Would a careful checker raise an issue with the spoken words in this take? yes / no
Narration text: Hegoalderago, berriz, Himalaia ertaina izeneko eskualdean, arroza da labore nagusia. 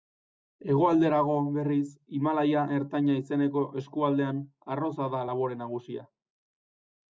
no